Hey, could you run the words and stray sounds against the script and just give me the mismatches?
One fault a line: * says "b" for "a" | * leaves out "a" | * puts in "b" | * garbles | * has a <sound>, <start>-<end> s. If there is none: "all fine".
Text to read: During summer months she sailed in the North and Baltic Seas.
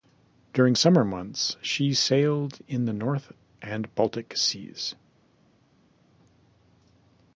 all fine